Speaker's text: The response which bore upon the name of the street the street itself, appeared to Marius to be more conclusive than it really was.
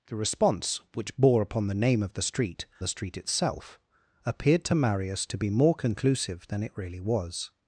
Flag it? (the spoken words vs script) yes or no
no